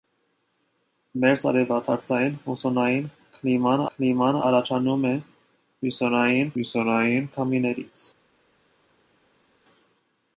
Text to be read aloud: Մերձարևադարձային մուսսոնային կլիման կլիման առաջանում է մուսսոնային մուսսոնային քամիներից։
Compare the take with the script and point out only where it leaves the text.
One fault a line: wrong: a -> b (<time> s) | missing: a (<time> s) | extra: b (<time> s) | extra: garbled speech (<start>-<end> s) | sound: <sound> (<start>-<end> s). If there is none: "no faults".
no faults